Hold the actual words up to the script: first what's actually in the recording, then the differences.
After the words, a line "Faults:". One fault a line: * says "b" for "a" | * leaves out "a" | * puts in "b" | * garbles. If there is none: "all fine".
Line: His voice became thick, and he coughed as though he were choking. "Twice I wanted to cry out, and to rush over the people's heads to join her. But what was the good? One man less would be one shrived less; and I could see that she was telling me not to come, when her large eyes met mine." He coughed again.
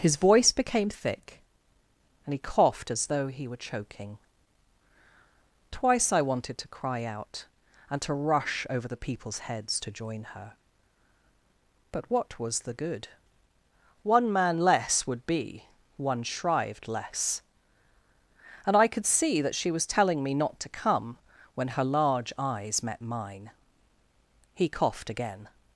His voice became thick, and he coughed as though he were choking. "Twice I wanted to cry out, and to rush over the people's heads to join her. But what was the good? One man less would be one shrived less; and I could see that she was telling me not to come, when her large eyes met mine." He coughed again.
Faults:
all fine